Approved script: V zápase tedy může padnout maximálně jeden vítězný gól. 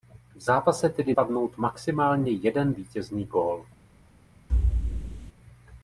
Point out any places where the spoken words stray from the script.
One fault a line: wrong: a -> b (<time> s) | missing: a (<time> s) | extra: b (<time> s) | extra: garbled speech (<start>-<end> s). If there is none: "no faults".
missing: může (1.1 s)